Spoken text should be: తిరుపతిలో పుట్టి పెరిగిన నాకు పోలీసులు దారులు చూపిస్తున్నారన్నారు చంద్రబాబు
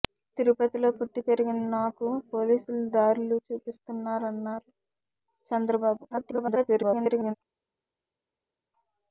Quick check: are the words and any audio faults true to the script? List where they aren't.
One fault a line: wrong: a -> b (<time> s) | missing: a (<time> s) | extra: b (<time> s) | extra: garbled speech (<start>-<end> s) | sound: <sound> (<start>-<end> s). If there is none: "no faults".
extra: garbled speech (6.1-7.3 s)